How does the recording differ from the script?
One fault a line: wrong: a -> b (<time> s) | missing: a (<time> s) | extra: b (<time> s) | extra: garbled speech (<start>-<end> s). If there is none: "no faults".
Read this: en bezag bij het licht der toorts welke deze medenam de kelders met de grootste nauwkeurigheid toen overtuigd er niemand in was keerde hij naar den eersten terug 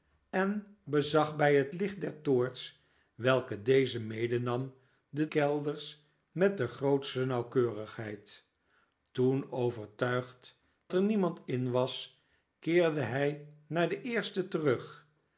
no faults